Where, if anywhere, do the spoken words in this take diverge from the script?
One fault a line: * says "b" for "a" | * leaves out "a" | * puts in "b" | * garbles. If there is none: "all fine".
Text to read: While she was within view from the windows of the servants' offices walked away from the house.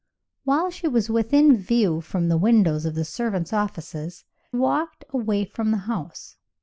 all fine